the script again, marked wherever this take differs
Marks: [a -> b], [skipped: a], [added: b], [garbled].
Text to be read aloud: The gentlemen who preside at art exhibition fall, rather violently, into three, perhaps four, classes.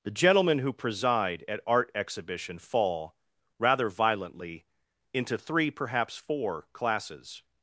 The gentlemen who preside at art exhibition fall, rather violently, into three, perhaps four, classes.